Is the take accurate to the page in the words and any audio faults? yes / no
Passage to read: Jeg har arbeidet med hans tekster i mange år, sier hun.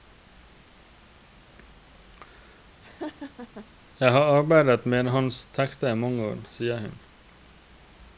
no